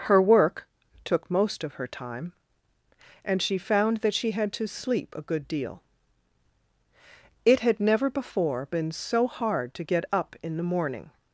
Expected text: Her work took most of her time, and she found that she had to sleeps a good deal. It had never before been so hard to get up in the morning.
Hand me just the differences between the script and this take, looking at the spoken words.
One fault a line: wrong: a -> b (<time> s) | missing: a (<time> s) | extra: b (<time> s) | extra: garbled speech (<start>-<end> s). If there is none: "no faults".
wrong: sleeps -> sleep (4.7 s)